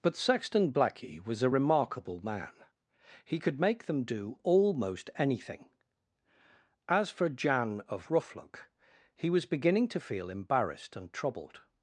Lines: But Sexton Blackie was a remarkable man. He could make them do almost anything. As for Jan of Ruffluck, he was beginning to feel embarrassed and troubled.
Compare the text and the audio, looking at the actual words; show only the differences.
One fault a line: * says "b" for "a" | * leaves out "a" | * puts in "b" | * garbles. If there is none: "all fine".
all fine